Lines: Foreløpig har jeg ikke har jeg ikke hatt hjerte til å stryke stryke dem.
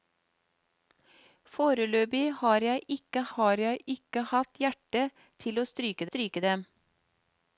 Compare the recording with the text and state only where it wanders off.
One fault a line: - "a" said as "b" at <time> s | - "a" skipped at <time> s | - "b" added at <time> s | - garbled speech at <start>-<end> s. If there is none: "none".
none